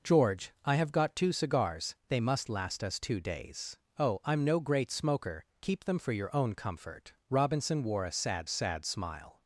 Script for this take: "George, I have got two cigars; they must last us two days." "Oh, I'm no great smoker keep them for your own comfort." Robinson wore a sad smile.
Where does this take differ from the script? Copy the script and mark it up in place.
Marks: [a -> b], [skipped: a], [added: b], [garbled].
"George, I have got two cigars; they must last us two days." "Oh, I'm no great smoker keep them for your own comfort." Robinson wore a sad [added: sad] smile.